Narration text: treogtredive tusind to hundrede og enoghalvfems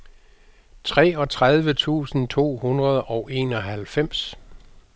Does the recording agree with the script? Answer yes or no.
yes